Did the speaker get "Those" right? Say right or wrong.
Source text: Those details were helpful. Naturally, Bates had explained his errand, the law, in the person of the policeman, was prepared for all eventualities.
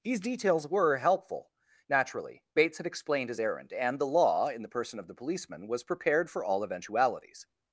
wrong